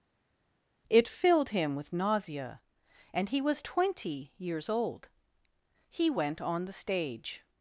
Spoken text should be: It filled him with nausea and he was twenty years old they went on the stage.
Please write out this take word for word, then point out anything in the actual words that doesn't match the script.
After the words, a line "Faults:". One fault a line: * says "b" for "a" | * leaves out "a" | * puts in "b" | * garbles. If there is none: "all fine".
It filled him with nausea and he was twenty years old he went on the stage.
Faults:
* says "he" for "they"